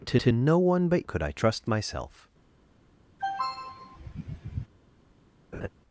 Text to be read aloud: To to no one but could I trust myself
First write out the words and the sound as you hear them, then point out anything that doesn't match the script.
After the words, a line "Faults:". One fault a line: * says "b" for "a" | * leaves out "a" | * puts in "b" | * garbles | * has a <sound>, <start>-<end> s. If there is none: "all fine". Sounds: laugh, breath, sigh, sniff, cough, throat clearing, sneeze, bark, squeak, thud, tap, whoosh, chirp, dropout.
To to no one but could I trust myself
Faults:
* has a throat clearing, 3.2-4.7 s
* has a laugh, 5.5-5.7 s